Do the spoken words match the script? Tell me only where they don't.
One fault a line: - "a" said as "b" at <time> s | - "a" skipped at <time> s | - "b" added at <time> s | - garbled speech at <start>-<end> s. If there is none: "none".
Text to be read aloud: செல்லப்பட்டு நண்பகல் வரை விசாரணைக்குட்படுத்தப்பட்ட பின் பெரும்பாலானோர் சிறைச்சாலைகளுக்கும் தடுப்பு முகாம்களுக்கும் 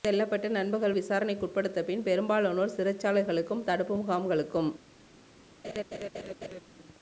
- "வரை" skipped at 0.9 s